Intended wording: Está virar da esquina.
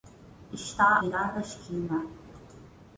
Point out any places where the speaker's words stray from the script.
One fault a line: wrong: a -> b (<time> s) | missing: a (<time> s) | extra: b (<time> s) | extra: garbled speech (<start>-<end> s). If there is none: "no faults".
no faults